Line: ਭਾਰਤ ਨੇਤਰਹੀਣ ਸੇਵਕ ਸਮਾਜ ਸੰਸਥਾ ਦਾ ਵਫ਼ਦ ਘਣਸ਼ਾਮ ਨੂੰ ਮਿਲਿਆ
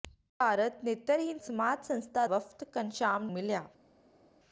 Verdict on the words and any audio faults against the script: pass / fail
fail